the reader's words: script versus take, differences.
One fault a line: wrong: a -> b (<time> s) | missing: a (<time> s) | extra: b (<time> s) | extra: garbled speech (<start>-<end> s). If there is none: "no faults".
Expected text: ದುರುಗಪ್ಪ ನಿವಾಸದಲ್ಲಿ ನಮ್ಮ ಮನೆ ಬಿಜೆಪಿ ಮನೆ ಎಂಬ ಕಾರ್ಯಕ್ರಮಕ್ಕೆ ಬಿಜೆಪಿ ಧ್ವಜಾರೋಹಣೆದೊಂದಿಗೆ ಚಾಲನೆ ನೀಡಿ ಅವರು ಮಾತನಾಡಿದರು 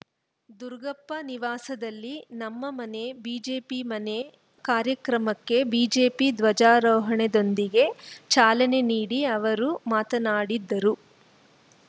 missing: ಎಂಬ (4.2 s)